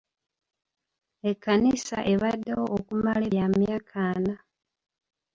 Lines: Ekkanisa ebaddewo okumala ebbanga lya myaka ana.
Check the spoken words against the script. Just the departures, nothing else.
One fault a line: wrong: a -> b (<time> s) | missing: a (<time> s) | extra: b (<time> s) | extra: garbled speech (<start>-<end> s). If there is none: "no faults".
missing: ebbanga (3.2 s)